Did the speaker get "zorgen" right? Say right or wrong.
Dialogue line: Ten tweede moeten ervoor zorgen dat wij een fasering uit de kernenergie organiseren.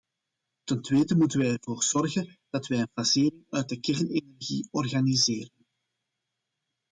right